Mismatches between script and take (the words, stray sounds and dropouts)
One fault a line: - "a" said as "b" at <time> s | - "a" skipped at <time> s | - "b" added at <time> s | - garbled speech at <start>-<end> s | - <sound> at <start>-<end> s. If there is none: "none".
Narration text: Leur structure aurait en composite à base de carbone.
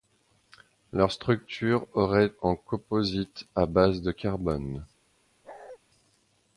- bark at 5.4-5.8 s